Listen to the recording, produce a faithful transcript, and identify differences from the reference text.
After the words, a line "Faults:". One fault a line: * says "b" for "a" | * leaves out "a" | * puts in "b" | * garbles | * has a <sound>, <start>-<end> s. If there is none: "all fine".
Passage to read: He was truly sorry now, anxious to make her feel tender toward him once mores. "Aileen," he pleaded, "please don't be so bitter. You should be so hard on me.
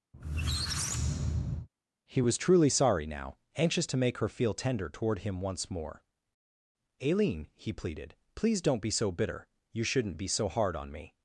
He was truly sorry now, anxious to make her feel tender toward him once more. "Aileen," he pleaded, "please don't be so bitter. You shouldn't be so hard on me.
Faults:
* has a squeak, 0.1-1.7 s
* says "more" for "mores"
* says "shouldn't" for "should"